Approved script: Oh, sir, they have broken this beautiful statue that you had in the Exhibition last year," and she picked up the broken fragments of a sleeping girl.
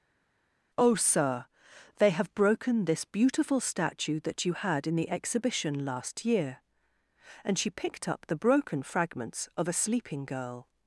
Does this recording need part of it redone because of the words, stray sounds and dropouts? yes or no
no